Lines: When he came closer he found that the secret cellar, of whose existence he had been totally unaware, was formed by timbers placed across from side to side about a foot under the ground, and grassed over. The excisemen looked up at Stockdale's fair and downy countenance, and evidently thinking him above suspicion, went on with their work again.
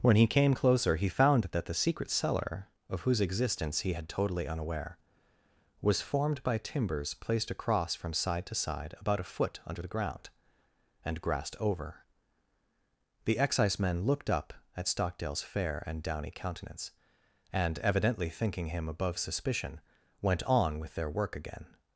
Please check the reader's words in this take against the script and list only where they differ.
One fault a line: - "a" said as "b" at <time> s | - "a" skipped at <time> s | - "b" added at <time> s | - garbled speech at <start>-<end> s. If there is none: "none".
- "been" skipped at 4.1 s